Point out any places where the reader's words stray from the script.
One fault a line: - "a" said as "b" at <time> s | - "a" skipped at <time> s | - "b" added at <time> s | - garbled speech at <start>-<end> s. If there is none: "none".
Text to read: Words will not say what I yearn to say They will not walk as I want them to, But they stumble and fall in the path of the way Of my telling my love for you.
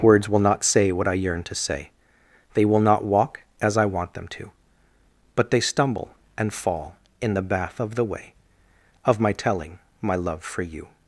- "path" said as "bath" at 7.4 s